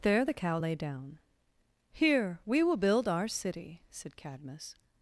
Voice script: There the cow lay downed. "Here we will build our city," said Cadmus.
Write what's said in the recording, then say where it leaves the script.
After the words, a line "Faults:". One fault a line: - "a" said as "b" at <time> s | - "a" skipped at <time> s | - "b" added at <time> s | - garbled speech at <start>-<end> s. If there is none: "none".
There the cow lay down. "Here we will build our city," said Cadmus.
Faults:
- "downed" said as "down" at 0.8 s